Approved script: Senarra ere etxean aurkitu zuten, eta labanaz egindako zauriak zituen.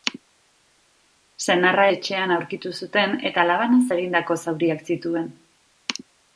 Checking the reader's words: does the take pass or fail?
fail